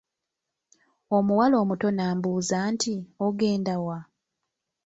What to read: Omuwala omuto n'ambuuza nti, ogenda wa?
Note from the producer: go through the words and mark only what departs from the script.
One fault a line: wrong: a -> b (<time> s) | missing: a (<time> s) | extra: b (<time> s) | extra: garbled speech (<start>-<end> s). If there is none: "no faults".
no faults